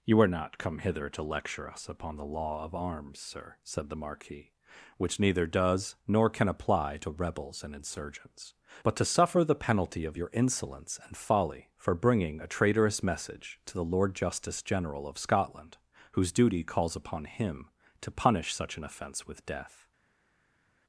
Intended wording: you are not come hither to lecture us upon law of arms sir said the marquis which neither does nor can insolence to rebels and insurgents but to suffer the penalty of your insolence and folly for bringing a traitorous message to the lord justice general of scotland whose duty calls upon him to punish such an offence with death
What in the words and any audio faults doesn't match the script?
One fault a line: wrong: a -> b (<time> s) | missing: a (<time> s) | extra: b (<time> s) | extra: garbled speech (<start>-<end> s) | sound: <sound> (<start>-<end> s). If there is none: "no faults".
extra: the (2.1 s)
wrong: insolence -> apply (6.5 s)